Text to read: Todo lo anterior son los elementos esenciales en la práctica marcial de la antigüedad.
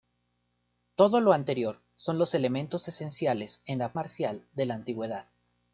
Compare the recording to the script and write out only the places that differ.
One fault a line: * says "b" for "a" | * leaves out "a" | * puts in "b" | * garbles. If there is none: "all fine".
* leaves out "práctica"